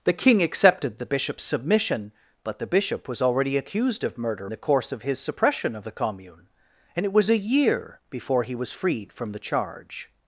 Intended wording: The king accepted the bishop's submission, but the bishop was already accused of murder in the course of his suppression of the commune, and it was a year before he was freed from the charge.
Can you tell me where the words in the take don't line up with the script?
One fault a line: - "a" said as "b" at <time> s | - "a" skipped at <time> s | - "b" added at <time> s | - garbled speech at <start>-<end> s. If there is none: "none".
- "in" skipped at 4.5 s